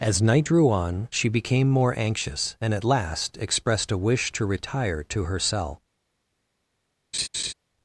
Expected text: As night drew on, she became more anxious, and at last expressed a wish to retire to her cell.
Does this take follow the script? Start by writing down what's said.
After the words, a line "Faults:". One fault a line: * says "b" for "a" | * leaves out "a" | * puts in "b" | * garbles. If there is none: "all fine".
As night drew on, she became more anxious, and at last expressed a wish to retire to her cell.
Faults:
all fine